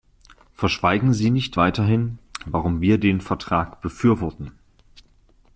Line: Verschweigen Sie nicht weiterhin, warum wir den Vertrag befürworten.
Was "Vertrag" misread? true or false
false